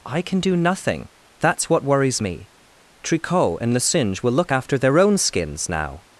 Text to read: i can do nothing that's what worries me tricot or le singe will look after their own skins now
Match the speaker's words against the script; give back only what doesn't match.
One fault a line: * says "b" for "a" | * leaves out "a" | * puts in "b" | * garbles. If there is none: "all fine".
* says "and" for "or"